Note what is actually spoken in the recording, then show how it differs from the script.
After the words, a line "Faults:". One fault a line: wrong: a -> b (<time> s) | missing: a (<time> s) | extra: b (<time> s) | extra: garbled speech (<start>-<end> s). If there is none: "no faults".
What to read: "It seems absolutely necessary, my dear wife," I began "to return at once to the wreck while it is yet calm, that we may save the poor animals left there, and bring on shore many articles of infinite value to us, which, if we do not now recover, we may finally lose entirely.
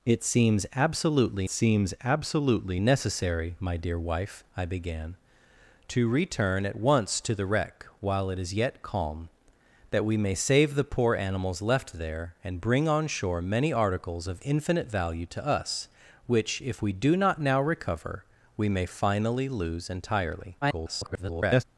"It seems absolutely seems absolutely necessary, my dear wife," I began "to return at once to the wreck while it is yet calm, that we may save the poor animals left there, and bring on shore many articles of infinite value to us, which, if we do not now recover, we may finally lose entirely. [garbled]
Faults:
extra: seems absolutely (1.5 s)
extra: garbled speech (20.6-21.6 s)